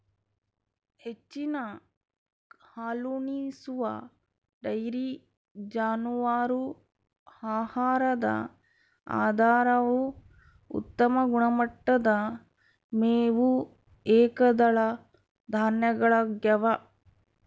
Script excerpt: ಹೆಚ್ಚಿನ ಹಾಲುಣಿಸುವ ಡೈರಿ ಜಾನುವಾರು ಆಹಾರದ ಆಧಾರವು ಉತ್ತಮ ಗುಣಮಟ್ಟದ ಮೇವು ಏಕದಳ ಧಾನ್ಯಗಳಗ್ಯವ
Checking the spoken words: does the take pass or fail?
pass